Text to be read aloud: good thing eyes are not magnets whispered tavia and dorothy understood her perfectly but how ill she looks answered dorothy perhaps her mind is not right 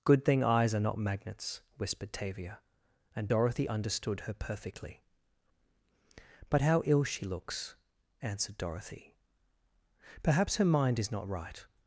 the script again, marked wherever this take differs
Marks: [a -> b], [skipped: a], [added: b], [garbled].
good thing eyes are not magnets whispered tavia and dorothy understood her perfectly but how ill she looks answered dorothy perhaps her mind is not right